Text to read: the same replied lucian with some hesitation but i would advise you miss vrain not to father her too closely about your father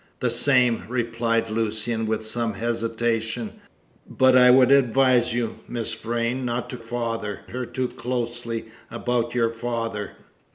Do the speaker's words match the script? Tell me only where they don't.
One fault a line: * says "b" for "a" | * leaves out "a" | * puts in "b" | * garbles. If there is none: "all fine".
all fine